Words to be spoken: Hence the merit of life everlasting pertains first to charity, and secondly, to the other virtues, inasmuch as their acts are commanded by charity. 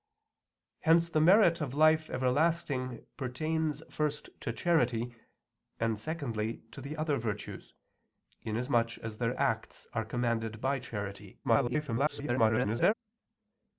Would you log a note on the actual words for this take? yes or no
yes